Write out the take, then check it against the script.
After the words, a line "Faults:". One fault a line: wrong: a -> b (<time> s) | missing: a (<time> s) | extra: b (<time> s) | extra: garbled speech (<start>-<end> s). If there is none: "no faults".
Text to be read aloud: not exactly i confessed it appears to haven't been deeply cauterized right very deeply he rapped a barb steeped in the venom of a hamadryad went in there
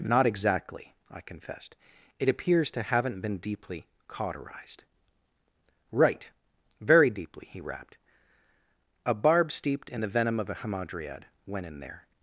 not exactly i confessed it appears to haven't been deeply cauterized right very deeply he rapped a barb steeped in the venom of a hamadryad went in there
Faults:
no faults